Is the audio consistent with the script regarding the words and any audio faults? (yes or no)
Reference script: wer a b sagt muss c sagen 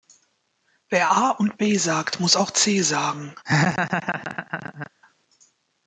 no